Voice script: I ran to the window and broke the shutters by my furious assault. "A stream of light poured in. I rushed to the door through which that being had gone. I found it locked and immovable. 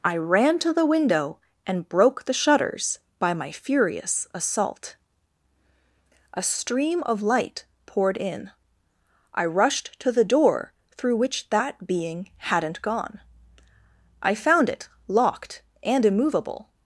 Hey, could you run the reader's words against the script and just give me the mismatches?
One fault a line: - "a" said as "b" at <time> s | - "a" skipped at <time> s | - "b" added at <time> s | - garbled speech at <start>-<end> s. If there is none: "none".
- "had" said as "hadn't" at 12.4 s